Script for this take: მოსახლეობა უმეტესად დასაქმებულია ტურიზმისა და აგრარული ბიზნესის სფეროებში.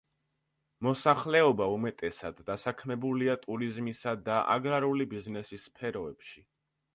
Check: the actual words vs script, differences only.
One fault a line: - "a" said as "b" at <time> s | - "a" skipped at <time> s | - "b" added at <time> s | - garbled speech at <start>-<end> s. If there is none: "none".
none